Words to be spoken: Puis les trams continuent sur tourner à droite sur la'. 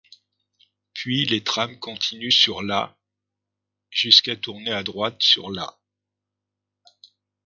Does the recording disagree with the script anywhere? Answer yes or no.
yes